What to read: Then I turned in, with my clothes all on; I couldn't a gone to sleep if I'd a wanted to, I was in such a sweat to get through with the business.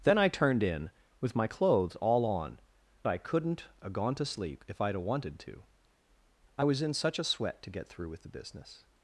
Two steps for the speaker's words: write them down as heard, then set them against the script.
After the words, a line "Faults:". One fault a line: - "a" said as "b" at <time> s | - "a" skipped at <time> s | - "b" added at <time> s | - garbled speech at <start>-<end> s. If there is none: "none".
Then I turned in, with my clothes all on; I couldn't a gone to sleep if I'd a wanted to, I was in such a sweat to get through with the business.
Faults:
none